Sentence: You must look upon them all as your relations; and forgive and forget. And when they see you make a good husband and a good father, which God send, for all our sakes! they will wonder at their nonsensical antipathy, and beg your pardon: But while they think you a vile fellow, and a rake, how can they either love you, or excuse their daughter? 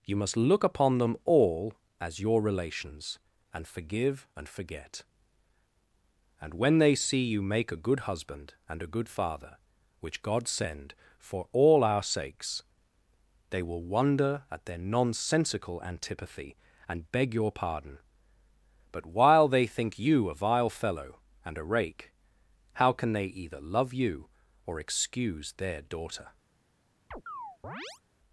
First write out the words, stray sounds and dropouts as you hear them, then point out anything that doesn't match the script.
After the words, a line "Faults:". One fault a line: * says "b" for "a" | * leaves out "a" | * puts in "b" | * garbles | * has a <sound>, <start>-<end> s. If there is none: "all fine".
You must look upon them all as your relations; and forgive and forget. And when they see you make a good husband and a good father, which God send, for all our sakes! they will wonder at their nonsensical antipathy, and beg your pardon: But while they think you a vile fellow, and a rake, how can they either love you, or excuse their daughter?
Faults:
* has a chirp, 27.1-28.0 s